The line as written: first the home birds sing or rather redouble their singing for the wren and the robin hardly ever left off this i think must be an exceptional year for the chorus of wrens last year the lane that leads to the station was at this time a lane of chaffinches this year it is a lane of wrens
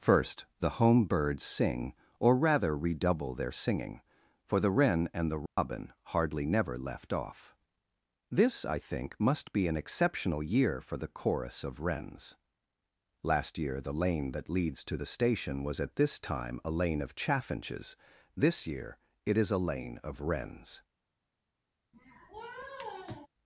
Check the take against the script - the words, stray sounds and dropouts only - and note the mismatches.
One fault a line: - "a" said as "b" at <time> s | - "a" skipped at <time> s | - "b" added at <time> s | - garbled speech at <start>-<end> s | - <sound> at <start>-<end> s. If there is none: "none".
- dropout at 5.5-5.6 s
- "ever" said as "never" at 6.4 s
- sniff at 21.9-23.3 s